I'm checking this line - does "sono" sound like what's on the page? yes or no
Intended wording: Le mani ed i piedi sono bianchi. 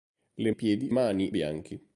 no